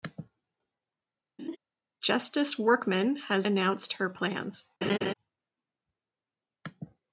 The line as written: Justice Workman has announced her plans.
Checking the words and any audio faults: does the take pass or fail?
fail